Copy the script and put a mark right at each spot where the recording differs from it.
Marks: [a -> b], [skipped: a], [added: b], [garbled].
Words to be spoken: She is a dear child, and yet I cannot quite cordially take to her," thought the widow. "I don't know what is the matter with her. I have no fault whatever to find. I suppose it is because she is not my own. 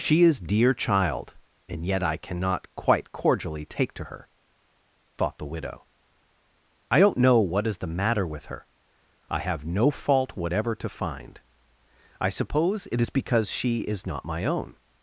She is [skipped: a] dear child, and yet I cannot quite cordially take to her," thought the widow. "I don't know what is the matter with her. I have no fault whatever to find. I suppose it is because she is not my own.